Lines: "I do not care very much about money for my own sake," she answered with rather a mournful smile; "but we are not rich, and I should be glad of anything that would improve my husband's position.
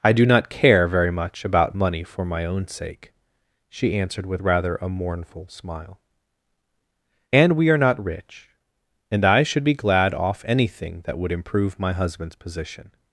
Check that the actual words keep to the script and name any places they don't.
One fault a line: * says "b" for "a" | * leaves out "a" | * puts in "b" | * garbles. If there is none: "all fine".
* says "and" for "but"
* says "off" for "of"